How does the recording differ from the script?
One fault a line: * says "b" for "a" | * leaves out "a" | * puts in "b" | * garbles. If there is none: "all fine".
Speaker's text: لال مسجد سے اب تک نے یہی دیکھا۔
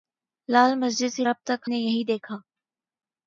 all fine